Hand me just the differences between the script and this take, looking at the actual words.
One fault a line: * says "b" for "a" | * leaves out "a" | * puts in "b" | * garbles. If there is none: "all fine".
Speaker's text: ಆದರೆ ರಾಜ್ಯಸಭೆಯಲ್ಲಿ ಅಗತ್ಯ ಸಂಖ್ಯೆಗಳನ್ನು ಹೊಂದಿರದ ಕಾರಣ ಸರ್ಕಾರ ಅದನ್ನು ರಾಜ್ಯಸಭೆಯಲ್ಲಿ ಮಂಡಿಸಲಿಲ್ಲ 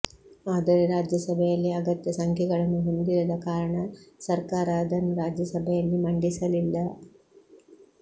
all fine